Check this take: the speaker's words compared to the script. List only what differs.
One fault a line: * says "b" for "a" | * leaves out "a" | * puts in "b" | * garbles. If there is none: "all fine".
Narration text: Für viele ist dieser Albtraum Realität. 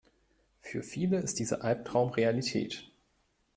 all fine